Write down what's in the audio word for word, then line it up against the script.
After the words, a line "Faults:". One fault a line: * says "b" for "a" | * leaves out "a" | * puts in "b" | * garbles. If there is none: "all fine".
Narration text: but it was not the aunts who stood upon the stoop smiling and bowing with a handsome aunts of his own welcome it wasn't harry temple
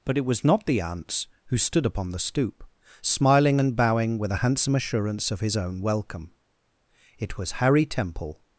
but it was not the aunts who stood upon the stoop smiling and bowing with a handsome assurance of his own welcome it was harry temple
Faults:
* says "assurance" for "aunts"
* says "was" for "wasn't"